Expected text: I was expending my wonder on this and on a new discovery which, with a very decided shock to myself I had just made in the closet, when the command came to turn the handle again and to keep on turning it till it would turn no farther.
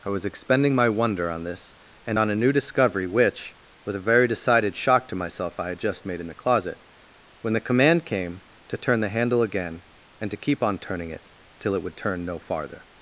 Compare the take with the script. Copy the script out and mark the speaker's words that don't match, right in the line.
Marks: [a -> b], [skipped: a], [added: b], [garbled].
I was expending my wonder on this and on a new discovery which, with a very decided shock to myself I had just made in the closet, when the command came to turn the handle again and to keep on turning it till it would turn no farther.